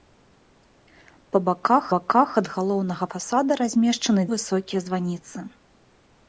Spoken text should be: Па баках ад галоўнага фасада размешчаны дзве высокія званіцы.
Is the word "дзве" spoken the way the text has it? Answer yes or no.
no